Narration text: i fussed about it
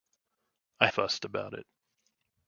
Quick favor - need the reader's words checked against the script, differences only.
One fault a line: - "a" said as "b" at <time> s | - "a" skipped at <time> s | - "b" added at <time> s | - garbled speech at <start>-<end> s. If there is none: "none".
none